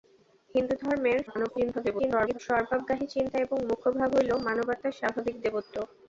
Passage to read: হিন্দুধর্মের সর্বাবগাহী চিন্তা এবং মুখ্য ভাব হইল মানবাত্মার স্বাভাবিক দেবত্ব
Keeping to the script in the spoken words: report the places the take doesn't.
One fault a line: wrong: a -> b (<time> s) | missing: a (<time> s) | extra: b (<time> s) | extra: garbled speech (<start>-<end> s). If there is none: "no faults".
extra: garbled speech (1.3-2.4 s)